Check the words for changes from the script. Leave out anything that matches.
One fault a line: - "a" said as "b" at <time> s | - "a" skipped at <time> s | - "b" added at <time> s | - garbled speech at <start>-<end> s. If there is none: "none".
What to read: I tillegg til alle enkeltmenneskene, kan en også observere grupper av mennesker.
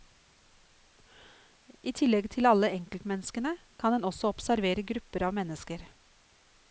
none